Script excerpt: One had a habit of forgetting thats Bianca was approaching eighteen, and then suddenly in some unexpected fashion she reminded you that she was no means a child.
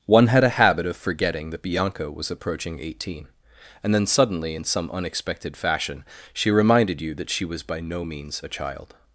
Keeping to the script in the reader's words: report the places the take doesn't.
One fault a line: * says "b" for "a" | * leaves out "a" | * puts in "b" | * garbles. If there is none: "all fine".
* says "that" for "thats"
* puts in "by"